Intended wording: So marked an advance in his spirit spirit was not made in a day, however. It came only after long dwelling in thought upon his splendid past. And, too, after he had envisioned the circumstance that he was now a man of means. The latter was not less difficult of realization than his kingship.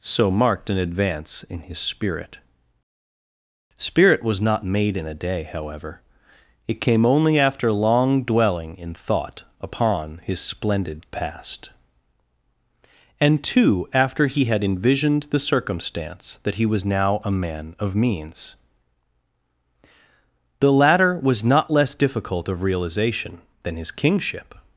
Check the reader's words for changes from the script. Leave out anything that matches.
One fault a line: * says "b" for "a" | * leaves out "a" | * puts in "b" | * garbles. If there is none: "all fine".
all fine